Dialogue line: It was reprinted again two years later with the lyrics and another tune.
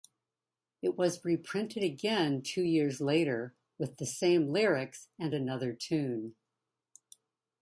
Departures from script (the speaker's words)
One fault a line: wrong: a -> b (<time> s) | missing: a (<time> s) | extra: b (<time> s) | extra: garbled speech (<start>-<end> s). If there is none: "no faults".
extra: same (4.1 s)